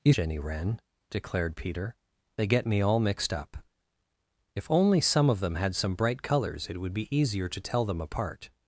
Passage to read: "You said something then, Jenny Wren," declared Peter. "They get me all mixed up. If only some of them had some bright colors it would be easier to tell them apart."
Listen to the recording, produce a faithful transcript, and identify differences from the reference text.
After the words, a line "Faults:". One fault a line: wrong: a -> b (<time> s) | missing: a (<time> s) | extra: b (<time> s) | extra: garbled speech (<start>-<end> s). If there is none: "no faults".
"You Jenny Wren," declared Peter. "They get me all mixed up. If only some of them had some bright colors it would be easier to tell them apart."
Faults:
missing: said something then (0.1 s)